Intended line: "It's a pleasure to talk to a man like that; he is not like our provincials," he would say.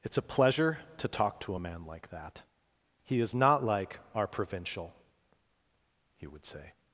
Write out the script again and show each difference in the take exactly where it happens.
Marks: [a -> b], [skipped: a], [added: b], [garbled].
"It's a pleasure to talk to a man like that; he is not like our [provincials," -> provincial] he would say.